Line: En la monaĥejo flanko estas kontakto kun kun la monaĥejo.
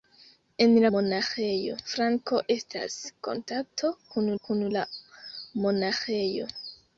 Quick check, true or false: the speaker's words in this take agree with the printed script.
true